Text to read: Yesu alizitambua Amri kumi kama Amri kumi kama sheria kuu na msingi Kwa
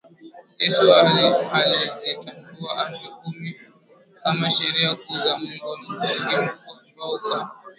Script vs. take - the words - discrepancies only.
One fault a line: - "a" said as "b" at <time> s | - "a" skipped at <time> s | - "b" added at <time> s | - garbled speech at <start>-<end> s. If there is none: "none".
- "Amri kumi kama sheria kuu" said as "sheria kuu za Mungu" at 4.5 s
- "Mkuu ambao" added at 6.4 s